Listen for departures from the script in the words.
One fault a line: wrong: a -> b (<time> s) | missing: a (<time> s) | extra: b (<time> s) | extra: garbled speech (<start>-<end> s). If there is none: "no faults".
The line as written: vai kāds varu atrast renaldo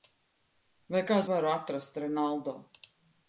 no faults